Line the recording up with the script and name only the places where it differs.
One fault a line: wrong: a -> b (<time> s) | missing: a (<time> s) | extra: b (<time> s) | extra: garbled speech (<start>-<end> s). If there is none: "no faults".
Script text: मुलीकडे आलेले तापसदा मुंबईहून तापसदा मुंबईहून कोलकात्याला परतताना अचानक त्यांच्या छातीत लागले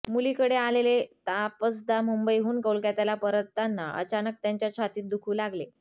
missing: तापसदा मुंबईहून (2.6 s)
extra: दुखू (5.1 s)